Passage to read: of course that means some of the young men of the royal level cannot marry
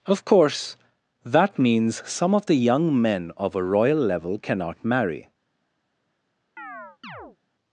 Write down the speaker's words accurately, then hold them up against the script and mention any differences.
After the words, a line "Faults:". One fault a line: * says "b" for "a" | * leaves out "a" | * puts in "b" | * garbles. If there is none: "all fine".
of course that means some of the young men of a royal level cannot marry
Faults:
* says "a" for "the"